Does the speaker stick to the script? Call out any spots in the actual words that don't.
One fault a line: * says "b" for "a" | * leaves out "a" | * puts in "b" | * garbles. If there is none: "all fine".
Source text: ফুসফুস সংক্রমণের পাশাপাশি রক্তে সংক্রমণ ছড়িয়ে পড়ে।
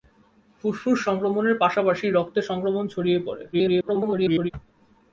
* garbles